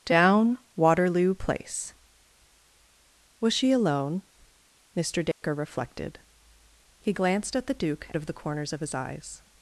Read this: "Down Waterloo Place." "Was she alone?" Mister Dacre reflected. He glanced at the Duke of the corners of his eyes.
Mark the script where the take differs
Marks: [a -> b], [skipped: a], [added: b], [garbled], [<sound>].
"Down Waterloo Place." "Was she alone?" Mister Dacre [dropout] reflected. He glanced at the Duke of the corners of his eyes.